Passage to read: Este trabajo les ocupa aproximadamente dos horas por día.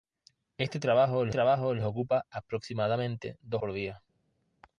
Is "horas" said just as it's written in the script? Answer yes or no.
no